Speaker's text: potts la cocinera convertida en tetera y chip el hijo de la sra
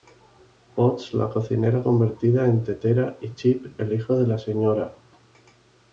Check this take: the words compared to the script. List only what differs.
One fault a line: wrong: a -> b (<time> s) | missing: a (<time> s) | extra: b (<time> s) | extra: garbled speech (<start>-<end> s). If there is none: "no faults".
no faults